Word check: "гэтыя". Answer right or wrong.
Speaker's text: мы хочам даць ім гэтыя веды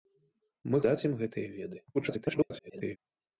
right